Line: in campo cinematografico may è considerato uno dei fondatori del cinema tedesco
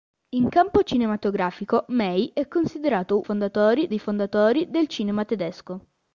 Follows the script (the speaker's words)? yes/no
no